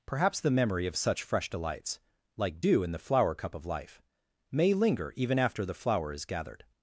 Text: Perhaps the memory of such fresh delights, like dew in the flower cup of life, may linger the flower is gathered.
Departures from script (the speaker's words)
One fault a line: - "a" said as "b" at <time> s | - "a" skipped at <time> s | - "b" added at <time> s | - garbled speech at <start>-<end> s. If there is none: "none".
- "even after" added at 5.2 s